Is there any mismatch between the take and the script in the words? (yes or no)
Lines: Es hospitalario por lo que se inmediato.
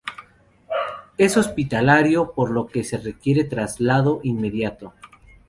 yes